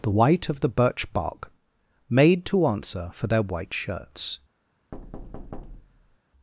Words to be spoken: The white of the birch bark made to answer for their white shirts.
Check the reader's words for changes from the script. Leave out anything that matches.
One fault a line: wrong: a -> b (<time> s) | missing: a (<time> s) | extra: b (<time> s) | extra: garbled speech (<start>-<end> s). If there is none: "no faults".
no faults